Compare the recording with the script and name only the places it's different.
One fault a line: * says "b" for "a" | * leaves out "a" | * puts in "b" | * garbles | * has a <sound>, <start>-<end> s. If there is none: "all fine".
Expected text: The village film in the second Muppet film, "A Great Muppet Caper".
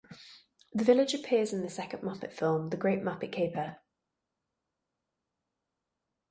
* says "appears" for "film"
* says "The" for "A"